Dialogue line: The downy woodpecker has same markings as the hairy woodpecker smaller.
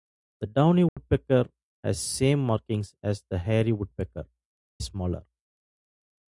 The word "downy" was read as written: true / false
true